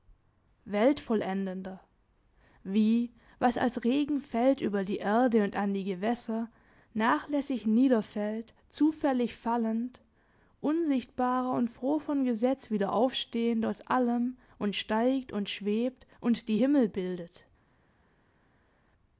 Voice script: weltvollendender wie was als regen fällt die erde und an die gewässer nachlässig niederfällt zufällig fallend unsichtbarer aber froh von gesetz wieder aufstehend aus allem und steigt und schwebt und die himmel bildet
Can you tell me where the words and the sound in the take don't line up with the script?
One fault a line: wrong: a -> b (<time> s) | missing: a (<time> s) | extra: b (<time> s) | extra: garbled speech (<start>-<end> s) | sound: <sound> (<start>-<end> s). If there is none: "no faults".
extra: über (4.6 s)
wrong: aber -> und (11.5 s)